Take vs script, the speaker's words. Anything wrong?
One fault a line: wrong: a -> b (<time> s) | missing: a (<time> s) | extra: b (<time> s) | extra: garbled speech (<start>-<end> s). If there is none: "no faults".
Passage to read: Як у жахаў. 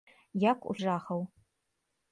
no faults